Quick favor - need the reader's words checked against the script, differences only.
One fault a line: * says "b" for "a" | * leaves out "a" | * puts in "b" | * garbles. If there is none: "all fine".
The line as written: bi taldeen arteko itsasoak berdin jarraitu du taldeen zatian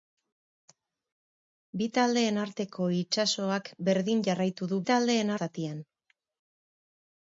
all fine